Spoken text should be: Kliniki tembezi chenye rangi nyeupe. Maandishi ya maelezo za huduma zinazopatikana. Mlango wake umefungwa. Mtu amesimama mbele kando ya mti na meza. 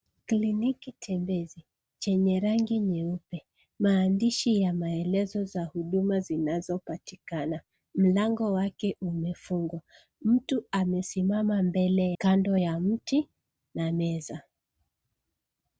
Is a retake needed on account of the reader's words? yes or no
no